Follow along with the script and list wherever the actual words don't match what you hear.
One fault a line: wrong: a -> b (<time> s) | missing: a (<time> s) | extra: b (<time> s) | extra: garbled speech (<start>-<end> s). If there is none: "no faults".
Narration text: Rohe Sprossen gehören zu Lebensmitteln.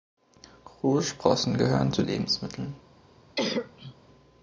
no faults